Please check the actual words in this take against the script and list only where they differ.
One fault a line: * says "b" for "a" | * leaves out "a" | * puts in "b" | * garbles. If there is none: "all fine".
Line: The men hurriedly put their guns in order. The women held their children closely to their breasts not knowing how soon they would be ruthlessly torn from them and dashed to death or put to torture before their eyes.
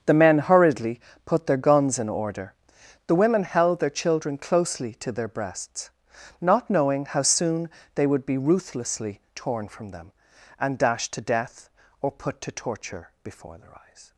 all fine